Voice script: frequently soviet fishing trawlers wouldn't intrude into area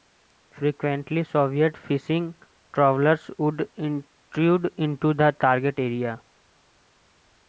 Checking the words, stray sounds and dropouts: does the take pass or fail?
fail